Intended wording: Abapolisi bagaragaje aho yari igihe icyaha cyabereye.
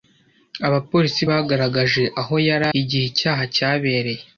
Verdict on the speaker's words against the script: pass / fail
pass